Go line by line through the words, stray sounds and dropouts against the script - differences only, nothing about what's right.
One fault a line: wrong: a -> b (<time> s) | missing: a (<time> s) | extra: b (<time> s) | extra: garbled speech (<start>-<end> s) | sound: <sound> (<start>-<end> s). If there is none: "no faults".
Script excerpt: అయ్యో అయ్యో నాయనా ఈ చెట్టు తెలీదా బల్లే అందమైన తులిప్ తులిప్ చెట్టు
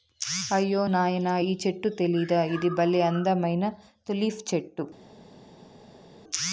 missing: అయ్యో (0.8 s)
extra: ఇది (2.5 s)
missing: తులిప్ (4.4 s)